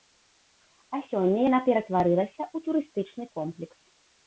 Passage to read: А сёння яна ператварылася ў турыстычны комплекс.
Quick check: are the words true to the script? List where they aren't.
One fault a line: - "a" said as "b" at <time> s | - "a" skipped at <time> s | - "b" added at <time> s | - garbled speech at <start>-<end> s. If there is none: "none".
none